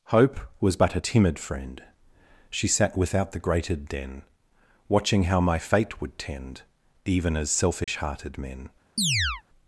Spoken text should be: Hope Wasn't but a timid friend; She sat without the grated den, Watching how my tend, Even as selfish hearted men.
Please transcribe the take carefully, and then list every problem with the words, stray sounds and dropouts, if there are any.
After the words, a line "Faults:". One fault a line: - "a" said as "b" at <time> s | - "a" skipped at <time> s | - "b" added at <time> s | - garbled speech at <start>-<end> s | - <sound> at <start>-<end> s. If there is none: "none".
Hope Was but a timid friend; She sat without the grated den, Watching how my fate would tend, Even as selfish hearted men.
Faults:
- "Wasn't" said as "Was" at 0.6 s
- "fate would" added at 5.6 s
- dropout at 7.8-7.9 s
- chirp at 9.0-9.4 s